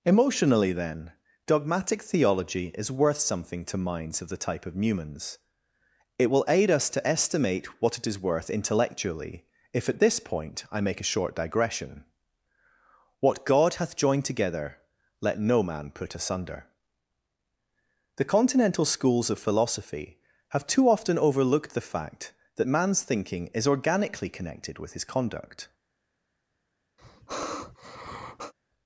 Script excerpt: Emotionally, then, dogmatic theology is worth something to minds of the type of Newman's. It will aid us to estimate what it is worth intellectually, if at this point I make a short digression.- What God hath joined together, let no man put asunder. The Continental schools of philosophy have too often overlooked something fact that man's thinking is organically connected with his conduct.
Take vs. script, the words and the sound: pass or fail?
fail